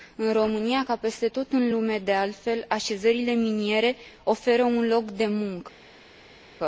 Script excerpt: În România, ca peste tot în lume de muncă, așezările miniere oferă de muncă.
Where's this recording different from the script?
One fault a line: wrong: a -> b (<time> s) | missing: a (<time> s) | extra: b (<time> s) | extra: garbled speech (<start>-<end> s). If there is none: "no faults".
wrong: muncă -> altfel (2.1 s)
extra: un loc (4.6 s)